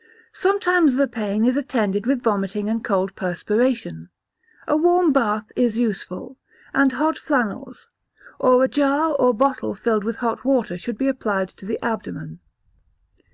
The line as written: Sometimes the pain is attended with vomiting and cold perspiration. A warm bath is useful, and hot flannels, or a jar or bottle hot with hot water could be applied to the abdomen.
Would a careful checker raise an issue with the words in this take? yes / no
yes